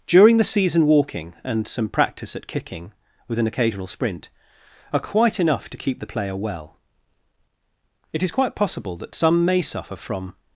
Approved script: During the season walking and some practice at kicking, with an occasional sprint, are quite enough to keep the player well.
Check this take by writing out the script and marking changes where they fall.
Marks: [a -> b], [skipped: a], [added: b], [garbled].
During the season walking and some practice at kicking, with an occasional sprint, are quite enough to keep the player well. [added: It is quite possible that some may suffer from]